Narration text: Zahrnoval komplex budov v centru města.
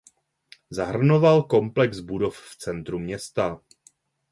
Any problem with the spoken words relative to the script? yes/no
no